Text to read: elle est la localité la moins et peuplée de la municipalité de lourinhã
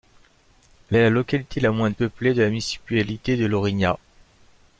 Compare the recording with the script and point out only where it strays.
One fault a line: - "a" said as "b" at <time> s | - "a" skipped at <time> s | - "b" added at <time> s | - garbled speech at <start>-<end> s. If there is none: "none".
none